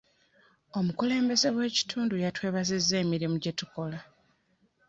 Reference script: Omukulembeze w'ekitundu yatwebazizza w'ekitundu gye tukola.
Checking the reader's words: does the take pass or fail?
fail